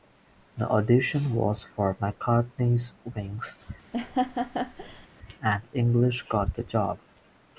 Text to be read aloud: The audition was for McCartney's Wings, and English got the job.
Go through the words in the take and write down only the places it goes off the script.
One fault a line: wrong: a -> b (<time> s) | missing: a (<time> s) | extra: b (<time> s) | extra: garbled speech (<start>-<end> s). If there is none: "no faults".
no faults